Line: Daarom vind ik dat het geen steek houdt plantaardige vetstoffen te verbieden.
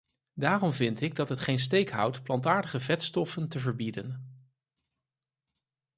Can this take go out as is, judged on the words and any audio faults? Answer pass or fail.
pass